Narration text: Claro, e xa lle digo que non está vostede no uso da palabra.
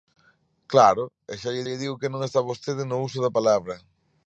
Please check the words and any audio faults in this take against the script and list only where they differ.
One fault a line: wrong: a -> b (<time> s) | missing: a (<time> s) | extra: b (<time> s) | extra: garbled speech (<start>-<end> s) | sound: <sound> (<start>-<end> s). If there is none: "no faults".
extra: lle (1.7 s)